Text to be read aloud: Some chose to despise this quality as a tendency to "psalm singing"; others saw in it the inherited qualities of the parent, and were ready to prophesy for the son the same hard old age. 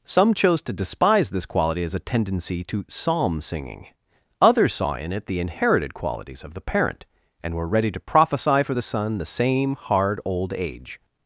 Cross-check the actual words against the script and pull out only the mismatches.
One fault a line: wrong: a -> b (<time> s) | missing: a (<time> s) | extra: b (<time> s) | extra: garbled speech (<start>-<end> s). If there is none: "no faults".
no faults